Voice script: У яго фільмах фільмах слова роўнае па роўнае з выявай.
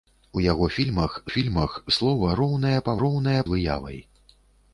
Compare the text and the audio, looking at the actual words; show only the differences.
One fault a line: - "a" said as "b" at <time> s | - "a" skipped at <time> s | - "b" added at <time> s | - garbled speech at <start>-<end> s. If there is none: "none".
none